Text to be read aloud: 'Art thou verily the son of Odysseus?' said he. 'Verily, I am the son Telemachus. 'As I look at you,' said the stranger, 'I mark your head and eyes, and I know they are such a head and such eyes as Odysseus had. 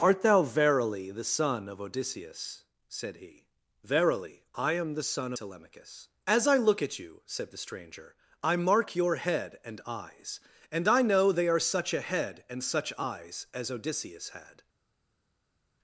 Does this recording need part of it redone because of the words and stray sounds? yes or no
no